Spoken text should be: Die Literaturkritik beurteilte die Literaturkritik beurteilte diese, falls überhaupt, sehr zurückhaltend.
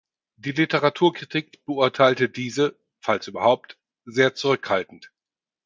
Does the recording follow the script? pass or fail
fail